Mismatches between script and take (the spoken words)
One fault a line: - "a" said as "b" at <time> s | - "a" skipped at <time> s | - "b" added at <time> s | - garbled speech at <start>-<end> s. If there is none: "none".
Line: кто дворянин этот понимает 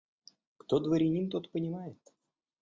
- "этот" said as "тот" at 1.3 s